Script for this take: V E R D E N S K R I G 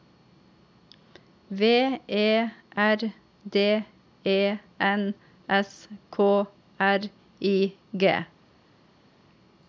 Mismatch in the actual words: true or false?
false